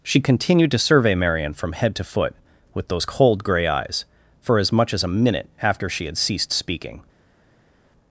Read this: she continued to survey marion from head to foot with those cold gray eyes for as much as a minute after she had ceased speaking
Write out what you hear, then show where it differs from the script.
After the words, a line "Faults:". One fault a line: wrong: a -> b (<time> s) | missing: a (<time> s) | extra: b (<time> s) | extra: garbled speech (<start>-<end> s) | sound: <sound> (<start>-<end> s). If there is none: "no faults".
she continued to survey marion from head to foot with those cold gray eyes for as much as a minute after she had ceased speaking
Faults:
no faults